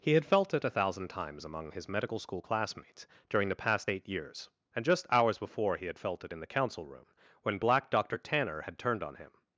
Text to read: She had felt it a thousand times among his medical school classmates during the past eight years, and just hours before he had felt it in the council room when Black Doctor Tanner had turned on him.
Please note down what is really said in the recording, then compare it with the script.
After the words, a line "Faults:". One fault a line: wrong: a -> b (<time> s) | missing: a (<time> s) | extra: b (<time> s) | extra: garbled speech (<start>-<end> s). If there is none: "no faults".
He had felt it a thousand times among his medical school classmates during the past eight years, and just hours before he had felt it in the council room when Black Doctor Tanner had turned on him.
Faults:
wrong: She -> He (0.0 s)